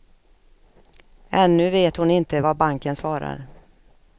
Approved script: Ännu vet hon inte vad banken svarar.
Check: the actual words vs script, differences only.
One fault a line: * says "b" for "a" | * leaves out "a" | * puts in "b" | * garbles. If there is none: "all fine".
all fine